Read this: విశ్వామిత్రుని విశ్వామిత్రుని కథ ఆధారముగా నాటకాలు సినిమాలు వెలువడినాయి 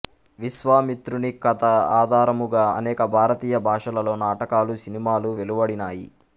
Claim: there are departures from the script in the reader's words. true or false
true